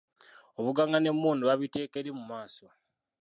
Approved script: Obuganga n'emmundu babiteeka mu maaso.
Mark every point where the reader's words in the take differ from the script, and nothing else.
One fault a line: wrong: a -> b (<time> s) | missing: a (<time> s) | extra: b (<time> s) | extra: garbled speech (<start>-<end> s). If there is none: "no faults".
extra: eri (2.0 s)